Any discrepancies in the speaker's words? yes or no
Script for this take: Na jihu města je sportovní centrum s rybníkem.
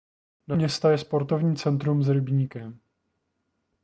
yes